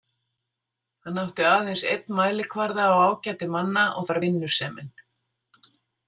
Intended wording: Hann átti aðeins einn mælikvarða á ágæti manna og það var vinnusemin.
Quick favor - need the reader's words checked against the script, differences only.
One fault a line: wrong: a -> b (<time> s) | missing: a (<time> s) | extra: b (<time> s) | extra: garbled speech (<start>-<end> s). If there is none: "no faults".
missing: það (4.1 s)